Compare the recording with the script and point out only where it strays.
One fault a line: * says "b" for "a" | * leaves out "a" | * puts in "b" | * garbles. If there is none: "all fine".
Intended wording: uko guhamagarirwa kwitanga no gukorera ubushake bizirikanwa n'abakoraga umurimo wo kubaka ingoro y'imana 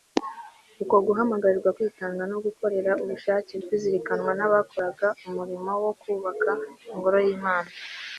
all fine